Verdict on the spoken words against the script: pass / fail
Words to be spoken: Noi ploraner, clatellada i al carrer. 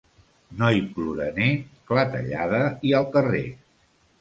pass